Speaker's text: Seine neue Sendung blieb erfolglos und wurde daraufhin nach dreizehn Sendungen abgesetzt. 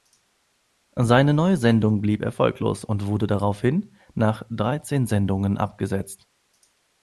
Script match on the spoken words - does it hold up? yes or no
yes